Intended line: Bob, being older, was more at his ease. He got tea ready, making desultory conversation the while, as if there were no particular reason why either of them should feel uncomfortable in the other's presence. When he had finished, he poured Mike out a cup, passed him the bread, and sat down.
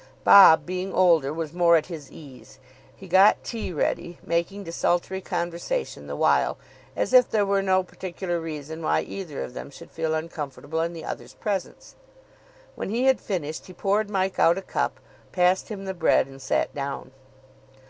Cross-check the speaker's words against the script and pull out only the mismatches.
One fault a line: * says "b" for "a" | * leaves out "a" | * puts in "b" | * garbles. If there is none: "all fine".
all fine